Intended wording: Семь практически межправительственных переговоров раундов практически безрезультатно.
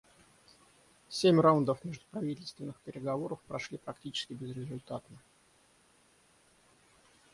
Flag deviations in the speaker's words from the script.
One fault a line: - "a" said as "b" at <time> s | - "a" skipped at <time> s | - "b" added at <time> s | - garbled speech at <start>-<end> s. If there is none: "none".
- "практически" said as "раундов" at 1.4 s
- "раундов" said as "прошли" at 3.5 s